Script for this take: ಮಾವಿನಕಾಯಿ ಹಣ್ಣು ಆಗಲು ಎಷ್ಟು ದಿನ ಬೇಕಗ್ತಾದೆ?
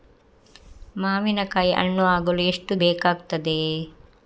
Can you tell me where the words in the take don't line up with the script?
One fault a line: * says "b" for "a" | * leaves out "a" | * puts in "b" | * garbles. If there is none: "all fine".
* leaves out "ದಿನ"